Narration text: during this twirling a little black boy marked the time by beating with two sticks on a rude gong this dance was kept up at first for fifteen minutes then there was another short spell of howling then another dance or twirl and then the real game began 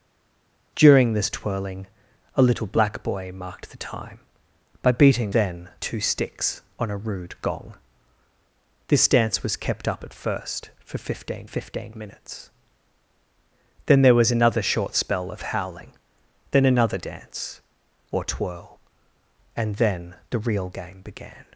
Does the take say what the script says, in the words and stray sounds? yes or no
no